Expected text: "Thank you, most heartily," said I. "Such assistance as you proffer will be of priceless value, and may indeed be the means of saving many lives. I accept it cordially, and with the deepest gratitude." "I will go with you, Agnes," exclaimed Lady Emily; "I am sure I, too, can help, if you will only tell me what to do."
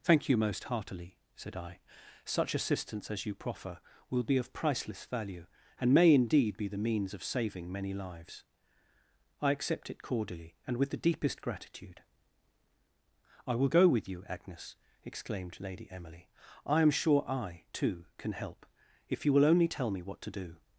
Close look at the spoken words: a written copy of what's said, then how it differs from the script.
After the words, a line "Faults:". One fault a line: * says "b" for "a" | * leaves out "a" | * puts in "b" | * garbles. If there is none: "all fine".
"Thank you, most heartily," said I. "Such assistance as you proffer will be of priceless value, and may indeed be the means of saving many lives. I accept it cordially, and with the deepest gratitude." "I will go with you, Agnes," exclaimed Lady Emily; "I am sure I, too, can help, if you will only tell me what to do."
Faults:
all fine